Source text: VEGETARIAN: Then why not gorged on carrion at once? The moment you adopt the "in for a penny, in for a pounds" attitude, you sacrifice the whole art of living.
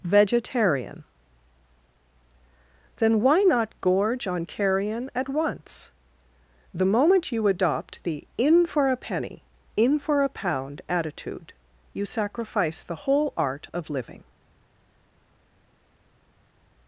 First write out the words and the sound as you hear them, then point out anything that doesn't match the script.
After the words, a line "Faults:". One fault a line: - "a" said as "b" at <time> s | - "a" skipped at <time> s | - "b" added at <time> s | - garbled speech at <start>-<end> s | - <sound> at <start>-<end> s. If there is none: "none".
VEGETARIAN: Then why not gorge on carrion at once? The moment you adopt the "in for a penny, in for a pound" attitude, you sacrifice the whole art of living.
Faults:
- "gorged" said as "gorge" at 3.8 s
- "pounds" said as "pound" at 10.3 s